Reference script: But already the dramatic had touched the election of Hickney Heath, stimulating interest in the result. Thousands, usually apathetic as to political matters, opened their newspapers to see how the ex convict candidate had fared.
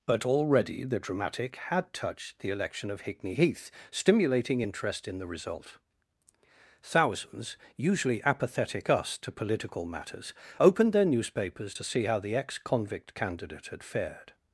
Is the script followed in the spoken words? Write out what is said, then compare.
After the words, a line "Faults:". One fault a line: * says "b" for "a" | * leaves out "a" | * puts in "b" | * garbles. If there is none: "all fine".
But already the dramatic had touched the election of Hickney Heath, stimulating interest in the result. Thousands, usually apathetic us to political matters, opened their newspapers to see how the ex convict candidate had fared.
Faults:
* says "us" for "as"